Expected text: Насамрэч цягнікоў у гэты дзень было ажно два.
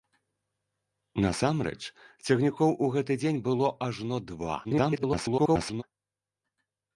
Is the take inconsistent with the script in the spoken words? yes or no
yes